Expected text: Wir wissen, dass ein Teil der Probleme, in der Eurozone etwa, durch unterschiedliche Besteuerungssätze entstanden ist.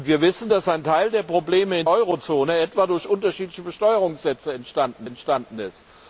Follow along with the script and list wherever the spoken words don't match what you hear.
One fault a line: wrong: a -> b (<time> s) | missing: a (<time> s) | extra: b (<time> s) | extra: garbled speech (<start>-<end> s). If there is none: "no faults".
missing: der (1.9 s)
extra: entstanden (5.0 s)